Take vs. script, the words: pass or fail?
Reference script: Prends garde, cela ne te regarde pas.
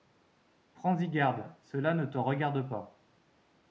fail